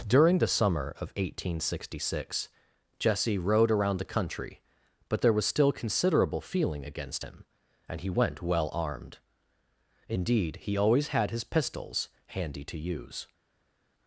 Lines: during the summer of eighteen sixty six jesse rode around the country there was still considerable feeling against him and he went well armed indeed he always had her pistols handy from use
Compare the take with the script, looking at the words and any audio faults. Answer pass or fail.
fail